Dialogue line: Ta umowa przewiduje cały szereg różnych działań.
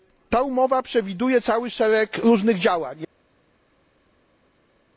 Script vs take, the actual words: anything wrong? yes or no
no